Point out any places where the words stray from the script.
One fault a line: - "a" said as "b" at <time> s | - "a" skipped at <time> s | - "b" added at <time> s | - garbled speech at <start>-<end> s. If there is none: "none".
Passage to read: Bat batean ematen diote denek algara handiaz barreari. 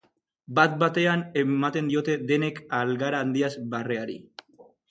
none